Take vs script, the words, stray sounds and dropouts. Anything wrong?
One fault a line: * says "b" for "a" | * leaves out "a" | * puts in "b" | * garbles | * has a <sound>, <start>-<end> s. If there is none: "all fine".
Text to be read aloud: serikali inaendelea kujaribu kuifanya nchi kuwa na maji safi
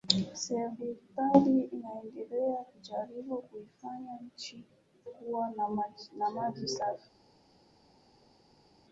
all fine